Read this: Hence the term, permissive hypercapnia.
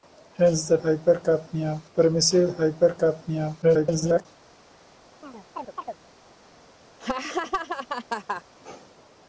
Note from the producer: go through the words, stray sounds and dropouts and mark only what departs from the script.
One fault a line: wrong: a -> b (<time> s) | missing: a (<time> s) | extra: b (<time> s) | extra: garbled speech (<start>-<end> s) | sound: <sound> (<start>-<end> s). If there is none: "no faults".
wrong: term -> hypercapnia (0.8 s)
extra: garbled speech (3.6-4.3 s)
sound: chirp (5.2-6.0 s)
sound: laugh (7.0-8.4 s)